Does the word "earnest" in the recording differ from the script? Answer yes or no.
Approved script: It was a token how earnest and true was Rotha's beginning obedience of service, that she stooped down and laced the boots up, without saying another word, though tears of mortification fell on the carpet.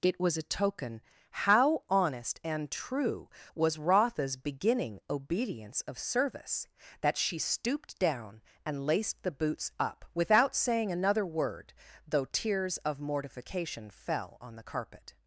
yes